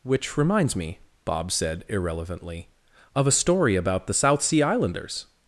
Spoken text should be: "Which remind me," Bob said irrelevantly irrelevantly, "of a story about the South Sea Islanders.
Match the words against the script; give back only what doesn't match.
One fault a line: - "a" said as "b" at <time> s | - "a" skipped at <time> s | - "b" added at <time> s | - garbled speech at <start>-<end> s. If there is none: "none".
- "remind" said as "reminds" at 0.4 s
- "irrelevantly" skipped at 2.7 s